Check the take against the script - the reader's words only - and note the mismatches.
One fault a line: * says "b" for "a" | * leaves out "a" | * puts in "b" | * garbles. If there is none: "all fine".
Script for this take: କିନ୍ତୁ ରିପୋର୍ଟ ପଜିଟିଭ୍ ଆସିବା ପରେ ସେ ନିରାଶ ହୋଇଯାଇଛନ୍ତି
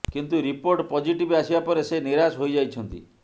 all fine